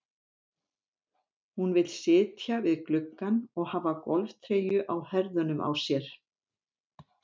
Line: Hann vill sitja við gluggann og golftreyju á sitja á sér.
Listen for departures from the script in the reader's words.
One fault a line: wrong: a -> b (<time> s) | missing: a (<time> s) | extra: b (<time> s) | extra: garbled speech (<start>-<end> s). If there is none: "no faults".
wrong: Hann -> Hún (1.6 s)
extra: hafa (3.7 s)
wrong: sitja -> herðunum (5.1 s)